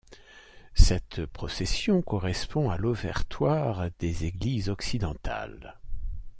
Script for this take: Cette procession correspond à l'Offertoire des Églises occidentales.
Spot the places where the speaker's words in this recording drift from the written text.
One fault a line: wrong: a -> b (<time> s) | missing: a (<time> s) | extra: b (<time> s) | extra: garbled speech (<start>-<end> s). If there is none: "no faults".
no faults